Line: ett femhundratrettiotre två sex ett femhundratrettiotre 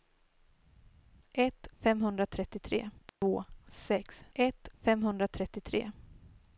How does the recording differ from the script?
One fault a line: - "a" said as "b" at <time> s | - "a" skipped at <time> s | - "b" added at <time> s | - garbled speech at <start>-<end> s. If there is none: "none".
none